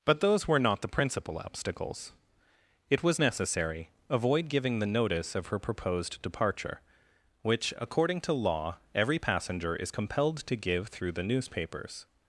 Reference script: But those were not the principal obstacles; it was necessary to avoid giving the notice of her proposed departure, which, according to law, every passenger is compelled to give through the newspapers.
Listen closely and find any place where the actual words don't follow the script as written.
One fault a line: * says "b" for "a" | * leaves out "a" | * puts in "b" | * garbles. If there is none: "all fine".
* leaves out "to"